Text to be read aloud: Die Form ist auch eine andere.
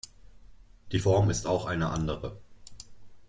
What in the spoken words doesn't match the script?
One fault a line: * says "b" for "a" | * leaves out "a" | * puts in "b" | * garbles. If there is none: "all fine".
all fine